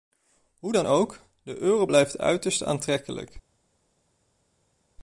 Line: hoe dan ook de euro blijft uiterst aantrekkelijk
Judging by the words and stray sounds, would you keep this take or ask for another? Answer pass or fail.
pass